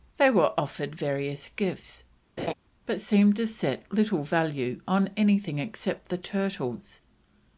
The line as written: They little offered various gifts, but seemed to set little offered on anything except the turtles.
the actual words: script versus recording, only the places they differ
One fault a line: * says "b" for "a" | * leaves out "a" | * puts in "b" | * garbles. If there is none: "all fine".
* says "were" for "little"
* says "value" for "offered"